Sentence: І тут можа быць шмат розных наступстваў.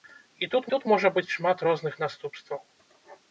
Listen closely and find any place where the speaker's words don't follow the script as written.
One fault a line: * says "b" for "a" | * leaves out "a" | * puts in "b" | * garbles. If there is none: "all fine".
* puts in "тут"